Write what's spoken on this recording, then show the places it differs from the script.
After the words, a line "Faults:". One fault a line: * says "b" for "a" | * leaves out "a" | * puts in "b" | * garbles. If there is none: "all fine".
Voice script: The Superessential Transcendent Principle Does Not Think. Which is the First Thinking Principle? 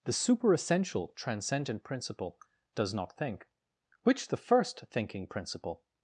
The Superessential Transcendent Principle Does Not Think. Which the First Thinking Principle?
Faults:
* leaves out "is"